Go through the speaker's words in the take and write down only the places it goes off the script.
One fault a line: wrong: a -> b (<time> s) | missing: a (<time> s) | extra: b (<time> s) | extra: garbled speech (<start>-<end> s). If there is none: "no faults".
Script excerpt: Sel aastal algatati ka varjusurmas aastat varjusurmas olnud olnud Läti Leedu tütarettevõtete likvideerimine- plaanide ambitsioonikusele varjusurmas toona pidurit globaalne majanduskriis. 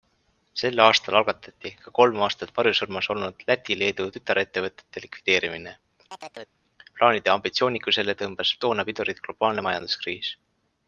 wrong: varjusurmas -> kolm (2.0 s)
missing: olnud (3.5 s)
wrong: varjusurmas -> tõmbas (8.2 s)